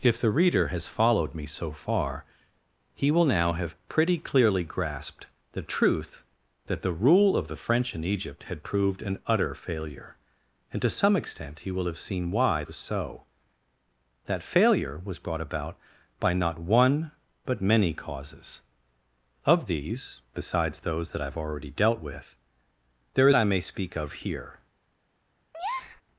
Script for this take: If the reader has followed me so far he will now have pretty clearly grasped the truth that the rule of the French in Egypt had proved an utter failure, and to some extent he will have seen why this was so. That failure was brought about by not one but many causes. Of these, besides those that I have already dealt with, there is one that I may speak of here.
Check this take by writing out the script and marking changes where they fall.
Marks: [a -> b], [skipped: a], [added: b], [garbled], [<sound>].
If the reader has followed me so far he will now have pretty clearly grasped the truth that the rule of the French in Egypt had proved an utter failure, and to some extent he will have seen why [skipped: this] was so. That failure was brought about by not one but many causes. Of these, besides those that I have already dealt with, there [skipped: is one that] I may speak of here. [breath]